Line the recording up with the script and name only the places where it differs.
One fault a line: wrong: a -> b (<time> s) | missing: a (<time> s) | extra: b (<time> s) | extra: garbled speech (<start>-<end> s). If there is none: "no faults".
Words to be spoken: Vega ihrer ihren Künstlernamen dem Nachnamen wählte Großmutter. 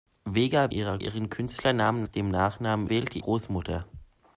no faults